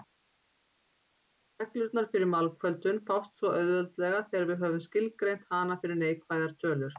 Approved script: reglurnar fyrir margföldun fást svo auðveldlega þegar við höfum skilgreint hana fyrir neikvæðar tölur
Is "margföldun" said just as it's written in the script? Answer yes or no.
yes